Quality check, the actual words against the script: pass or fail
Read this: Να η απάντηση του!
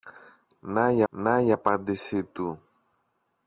fail